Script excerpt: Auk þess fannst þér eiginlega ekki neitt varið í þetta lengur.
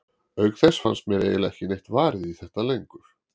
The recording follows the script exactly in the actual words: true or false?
false